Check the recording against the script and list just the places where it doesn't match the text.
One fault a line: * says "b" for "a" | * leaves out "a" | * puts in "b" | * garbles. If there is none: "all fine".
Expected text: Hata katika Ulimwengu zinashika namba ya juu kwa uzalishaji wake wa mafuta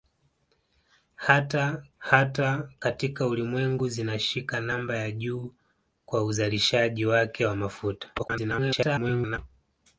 * puts in "hata"
* garbles